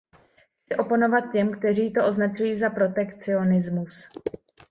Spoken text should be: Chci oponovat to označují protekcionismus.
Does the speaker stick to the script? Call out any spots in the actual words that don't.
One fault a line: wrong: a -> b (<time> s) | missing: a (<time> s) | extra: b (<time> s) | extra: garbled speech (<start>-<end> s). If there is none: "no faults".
extra: těm kteří (1.3 s)
extra: za (2.5 s)